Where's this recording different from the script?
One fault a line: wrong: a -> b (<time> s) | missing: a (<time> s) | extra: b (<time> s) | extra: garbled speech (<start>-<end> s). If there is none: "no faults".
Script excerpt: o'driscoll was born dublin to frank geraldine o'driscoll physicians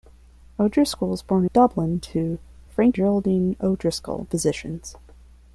no faults